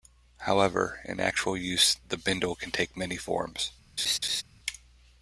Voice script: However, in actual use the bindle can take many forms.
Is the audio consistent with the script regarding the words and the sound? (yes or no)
no